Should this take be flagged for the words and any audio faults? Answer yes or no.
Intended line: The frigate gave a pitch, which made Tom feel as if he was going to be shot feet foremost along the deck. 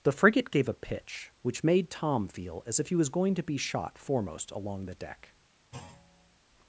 yes